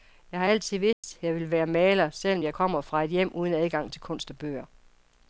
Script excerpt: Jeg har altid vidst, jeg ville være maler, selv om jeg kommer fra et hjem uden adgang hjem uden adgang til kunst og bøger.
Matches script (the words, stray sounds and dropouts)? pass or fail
fail